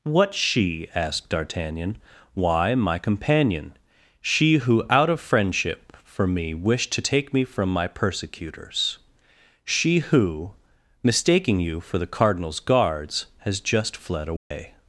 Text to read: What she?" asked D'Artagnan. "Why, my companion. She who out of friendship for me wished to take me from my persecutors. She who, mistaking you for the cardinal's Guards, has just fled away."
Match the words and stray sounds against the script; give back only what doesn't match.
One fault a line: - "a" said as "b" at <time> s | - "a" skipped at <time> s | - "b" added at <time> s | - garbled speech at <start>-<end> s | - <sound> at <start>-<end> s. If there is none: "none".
- dropout at 14.4-14.5 s